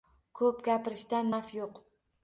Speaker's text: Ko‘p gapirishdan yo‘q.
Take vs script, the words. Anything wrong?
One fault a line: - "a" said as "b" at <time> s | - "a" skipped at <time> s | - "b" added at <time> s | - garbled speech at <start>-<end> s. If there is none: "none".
- "naf" added at 1.3 s